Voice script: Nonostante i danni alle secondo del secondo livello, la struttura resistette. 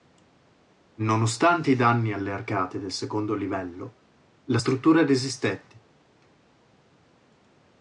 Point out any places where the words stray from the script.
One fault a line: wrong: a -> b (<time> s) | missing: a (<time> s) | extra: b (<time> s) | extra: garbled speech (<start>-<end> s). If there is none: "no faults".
wrong: secondo -> arcate (2.3 s)